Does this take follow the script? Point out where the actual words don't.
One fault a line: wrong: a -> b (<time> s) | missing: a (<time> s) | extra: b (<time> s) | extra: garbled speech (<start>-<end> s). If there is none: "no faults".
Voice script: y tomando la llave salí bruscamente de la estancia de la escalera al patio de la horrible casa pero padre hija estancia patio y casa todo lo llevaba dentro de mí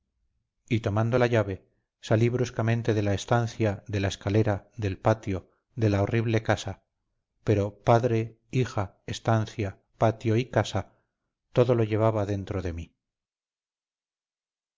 wrong: al -> del (4.8 s)